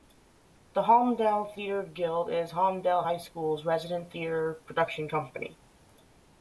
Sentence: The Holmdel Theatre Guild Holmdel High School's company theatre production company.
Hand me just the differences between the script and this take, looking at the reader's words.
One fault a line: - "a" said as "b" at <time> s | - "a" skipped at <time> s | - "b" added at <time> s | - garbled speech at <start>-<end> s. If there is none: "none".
- "is" added at 2.3 s
- "company" said as "resident" at 3.6 s